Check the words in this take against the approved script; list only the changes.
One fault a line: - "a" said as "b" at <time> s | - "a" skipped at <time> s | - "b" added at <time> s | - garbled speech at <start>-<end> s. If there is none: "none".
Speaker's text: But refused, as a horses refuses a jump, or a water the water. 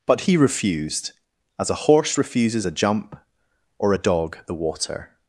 - "he" added at 0.2 s
- "horses" said as "horse" at 1.8 s
- "water" said as "dog" at 3.9 s